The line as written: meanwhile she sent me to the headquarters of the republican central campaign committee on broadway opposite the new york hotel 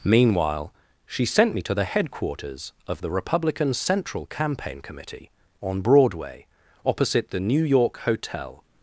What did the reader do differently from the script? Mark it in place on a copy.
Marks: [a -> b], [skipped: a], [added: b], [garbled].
meanwhile she sent me to the headquarters of the republican central campaign committee on broadway opposite the new york hotel